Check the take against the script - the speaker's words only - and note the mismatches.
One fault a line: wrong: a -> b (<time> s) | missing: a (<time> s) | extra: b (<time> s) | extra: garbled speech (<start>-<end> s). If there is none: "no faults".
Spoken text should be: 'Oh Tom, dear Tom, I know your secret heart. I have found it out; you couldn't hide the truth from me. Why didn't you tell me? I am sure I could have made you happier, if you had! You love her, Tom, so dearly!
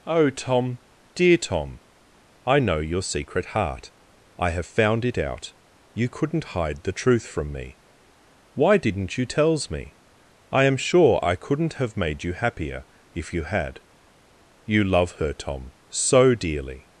wrong: tell -> tells (9.3 s)
wrong: could -> couldn't (11.3 s)